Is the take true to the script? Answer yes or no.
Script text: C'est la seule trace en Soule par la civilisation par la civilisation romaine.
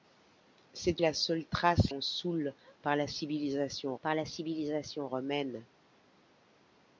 yes